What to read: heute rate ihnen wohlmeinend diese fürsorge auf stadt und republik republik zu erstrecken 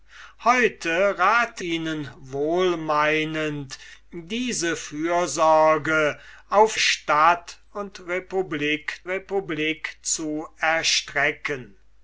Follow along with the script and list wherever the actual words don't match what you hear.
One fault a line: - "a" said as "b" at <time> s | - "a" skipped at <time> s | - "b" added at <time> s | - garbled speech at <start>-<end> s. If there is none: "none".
none